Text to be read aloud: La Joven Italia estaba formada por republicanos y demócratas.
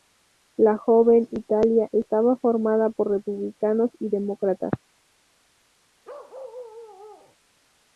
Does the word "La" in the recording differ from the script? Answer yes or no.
no